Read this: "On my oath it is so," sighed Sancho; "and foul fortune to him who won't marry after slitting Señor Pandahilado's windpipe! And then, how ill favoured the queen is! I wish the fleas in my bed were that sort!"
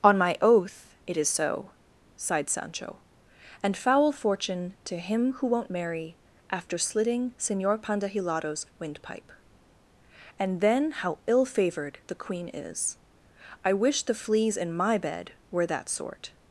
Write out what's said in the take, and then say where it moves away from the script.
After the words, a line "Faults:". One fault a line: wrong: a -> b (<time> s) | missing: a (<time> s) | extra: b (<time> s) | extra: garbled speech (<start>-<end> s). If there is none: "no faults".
"On my oath it is so," sighed Sancho; "and foul fortune to him who won't marry after slitting Señor Pandahilado's windpipe! And then, how ill favoured the queen is! I wish the fleas in my bed were that sort!"
Faults:
no faults